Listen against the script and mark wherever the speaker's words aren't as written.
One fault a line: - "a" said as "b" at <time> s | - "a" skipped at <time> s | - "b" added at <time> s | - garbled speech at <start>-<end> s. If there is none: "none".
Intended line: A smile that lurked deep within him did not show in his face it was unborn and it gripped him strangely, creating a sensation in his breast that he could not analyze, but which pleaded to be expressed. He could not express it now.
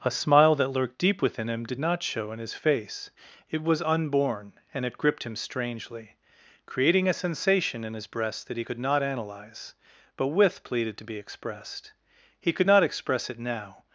- "which" said as "with" at 10.3 s